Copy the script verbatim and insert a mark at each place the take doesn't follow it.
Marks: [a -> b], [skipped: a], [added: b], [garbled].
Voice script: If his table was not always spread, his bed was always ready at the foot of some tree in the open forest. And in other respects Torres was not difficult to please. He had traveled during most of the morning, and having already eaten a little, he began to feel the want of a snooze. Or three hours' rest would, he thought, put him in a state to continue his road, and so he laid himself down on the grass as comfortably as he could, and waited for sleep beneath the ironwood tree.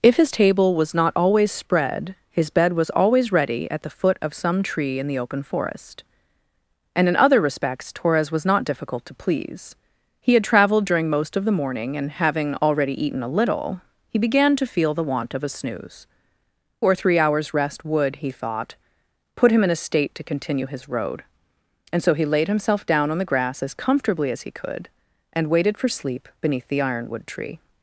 If his table was not always spread, his bed was always ready at the foot of some tree in the open forest. And in other respects Torres was not difficult to please. He had traveled during most of the morning, and having already eaten a little, he began to feel the want of a snooze. Or three hours' rest would, he thought, put him in a state to continue his road, and so he laid himself down on the grass as comfortably as he could, and waited for sleep beneath the ironwood tree.